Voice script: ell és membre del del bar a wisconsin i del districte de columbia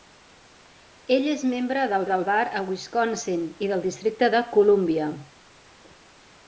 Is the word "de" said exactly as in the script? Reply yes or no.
yes